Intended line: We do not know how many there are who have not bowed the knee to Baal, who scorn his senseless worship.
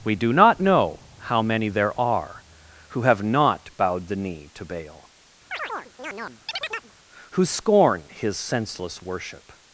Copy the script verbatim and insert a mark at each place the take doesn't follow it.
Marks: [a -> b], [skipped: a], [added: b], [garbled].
We do not know how many there are who have not bowed the knee to Baal, who scorn his senseless worship.